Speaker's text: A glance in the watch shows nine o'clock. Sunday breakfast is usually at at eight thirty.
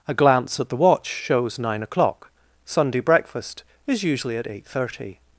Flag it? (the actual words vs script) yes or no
yes